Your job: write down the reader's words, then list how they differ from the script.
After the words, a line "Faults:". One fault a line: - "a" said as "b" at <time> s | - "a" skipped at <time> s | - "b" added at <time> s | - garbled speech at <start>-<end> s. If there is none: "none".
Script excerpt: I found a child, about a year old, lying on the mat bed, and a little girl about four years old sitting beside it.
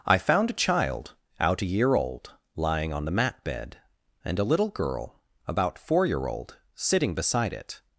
I found a child, out a year old, lying on the mat bed, and a little girl about four year old sitting beside it.
Faults:
- "about" said as "out" at 1.4 s
- "years" said as "year" at 6.1 s